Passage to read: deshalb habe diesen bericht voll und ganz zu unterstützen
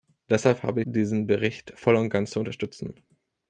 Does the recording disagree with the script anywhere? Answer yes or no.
no